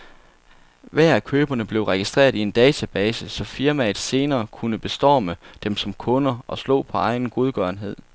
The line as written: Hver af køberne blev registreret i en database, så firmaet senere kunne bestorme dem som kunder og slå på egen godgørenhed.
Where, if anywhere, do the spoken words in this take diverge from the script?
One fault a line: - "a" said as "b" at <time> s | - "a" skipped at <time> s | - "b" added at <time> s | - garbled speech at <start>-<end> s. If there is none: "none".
none